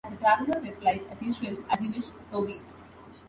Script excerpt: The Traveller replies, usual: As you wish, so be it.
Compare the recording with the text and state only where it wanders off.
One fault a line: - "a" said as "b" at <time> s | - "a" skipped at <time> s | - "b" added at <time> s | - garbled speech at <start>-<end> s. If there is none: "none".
- "as" added at 1.1 s